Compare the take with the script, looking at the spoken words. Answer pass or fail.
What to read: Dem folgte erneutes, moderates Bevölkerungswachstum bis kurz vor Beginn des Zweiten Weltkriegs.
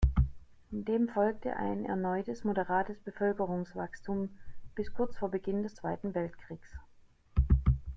fail